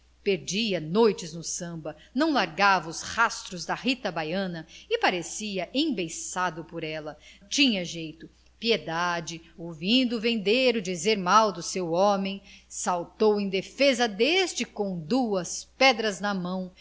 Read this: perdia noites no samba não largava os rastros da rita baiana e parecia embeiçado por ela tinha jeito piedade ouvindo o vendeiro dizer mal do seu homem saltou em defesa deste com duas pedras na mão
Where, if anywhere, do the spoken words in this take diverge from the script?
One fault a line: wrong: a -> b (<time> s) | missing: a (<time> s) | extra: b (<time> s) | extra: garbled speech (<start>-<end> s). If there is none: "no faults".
no faults